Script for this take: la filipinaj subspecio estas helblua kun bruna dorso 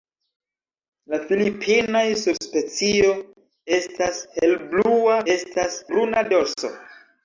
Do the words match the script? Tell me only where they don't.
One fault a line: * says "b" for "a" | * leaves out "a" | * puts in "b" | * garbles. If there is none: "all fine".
* says "estas" for "kun"